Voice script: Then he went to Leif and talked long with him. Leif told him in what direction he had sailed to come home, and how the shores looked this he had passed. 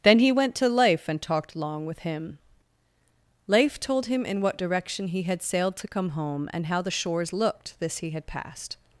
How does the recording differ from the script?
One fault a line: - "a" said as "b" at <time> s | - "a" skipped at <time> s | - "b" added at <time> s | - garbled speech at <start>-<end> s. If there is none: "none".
none